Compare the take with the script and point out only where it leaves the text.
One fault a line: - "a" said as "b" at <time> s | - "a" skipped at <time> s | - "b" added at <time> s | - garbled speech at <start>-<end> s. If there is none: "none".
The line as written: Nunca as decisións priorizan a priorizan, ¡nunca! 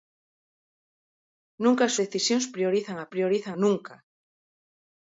none